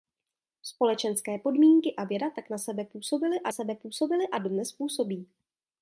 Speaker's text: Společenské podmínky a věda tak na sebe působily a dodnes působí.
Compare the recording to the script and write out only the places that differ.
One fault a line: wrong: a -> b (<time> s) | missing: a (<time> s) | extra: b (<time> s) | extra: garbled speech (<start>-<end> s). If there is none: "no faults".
extra: sebe působily a (3.5 s)